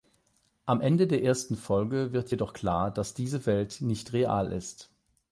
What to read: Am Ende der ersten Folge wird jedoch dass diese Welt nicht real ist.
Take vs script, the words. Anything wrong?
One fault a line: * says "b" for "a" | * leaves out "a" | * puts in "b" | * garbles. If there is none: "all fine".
* puts in "klar"